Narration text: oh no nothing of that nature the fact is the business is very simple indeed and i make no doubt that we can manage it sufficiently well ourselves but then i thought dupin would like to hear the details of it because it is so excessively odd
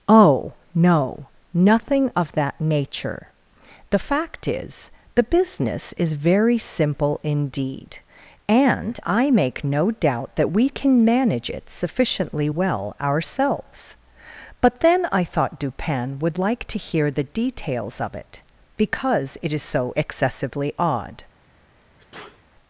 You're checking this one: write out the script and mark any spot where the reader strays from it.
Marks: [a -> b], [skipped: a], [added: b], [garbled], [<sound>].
oh no nothing of that nature the fact is the business is very simple indeed and i make no doubt that we can manage it sufficiently well ourselves but then i thought dupin would like to hear the details of it because it is so excessively odd [sneeze]